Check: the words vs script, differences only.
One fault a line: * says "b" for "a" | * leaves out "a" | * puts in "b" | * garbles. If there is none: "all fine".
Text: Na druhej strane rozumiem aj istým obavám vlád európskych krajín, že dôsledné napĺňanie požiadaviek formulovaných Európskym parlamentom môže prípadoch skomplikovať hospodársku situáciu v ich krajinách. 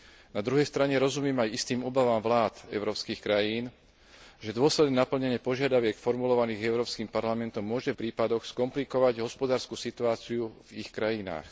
all fine